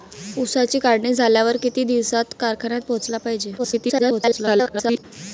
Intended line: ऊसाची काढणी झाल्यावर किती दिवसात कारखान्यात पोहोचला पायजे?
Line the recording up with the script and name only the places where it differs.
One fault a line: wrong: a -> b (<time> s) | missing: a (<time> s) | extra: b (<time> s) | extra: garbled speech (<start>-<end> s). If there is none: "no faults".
extra: garbled speech (3.6-5.0 s)